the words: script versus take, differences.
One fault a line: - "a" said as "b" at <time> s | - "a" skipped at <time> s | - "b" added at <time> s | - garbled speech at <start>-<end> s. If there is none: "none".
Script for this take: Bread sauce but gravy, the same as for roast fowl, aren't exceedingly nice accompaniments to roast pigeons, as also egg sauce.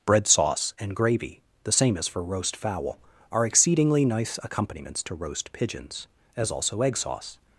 - "but" said as "and" at 0.8 s
- "aren't" said as "are" at 3.3 s